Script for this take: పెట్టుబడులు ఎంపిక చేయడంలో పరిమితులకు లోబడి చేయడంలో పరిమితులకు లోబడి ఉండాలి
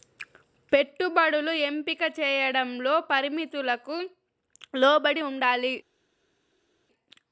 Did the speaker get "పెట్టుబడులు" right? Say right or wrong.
right